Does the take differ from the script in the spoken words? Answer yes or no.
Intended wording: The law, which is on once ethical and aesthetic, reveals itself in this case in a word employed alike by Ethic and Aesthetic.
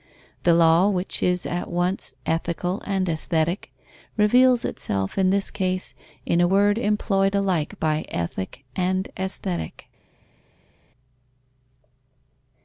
yes